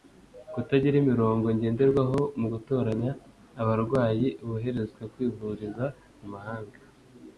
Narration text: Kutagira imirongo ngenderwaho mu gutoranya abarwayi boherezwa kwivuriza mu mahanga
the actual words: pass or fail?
pass